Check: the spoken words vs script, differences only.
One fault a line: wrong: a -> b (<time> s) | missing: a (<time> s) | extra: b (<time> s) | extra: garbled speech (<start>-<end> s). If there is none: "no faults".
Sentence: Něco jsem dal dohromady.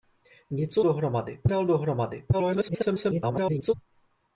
wrong: jsem -> dohromady (0.8 s)
extra: garbled speech (2.3-3.7 s)